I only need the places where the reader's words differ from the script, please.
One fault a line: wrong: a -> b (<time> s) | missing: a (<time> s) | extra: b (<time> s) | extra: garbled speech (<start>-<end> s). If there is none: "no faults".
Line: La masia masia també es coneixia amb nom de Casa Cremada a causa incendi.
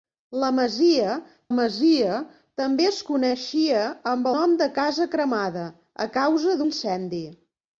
no faults